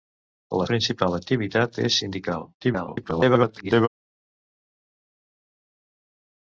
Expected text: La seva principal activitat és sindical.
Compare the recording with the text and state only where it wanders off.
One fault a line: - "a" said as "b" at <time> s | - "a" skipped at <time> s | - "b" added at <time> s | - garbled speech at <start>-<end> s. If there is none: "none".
- "seva" skipped at 0.7 s
- garbled speech at 2.6-3.9 s